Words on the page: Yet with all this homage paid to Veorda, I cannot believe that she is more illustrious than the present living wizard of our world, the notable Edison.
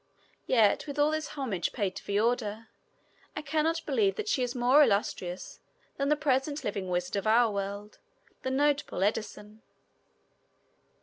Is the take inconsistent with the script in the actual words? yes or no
no